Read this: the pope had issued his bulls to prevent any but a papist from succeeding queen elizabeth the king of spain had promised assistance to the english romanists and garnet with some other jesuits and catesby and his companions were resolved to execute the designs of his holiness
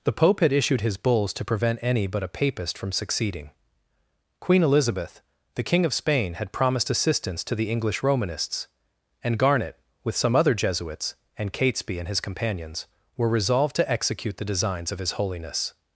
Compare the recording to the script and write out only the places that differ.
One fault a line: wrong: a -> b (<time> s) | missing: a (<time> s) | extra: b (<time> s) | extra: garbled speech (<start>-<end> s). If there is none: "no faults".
no faults